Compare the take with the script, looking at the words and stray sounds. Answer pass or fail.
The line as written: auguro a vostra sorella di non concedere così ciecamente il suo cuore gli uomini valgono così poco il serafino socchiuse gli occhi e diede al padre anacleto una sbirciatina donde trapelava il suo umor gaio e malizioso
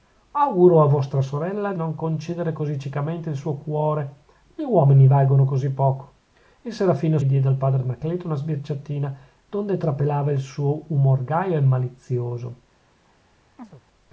fail